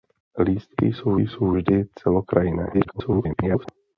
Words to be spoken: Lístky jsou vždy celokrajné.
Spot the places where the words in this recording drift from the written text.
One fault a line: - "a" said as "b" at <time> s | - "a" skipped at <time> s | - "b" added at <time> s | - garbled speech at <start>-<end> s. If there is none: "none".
- "jsou" added at 1.2 s
- garbled speech at 2.7-3.7 s